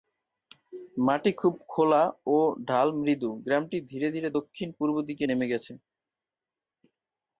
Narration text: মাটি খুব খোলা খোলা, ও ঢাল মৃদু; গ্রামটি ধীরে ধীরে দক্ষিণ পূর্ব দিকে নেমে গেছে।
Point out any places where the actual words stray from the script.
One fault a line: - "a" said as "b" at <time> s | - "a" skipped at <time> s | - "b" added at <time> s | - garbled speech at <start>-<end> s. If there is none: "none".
- "খোলা" skipped at 2.0 s